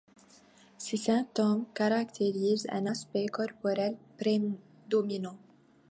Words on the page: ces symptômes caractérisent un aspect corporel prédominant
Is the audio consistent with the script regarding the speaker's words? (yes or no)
yes